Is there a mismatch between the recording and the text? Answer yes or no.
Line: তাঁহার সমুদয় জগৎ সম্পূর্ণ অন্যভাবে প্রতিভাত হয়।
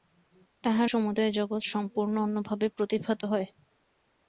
no